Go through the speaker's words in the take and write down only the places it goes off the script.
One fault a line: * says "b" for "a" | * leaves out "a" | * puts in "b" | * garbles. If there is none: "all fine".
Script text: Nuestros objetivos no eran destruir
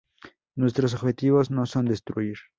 * says "son" for "eran"